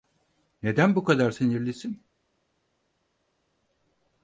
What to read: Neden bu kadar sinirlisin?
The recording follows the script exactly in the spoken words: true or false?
true